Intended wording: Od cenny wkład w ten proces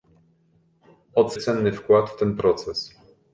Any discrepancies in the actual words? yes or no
no